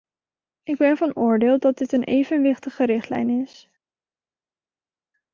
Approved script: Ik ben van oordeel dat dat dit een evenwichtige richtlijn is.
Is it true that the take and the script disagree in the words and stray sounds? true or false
true